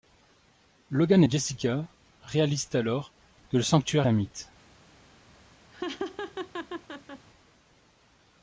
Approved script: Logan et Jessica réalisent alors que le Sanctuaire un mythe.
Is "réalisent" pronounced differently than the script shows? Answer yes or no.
no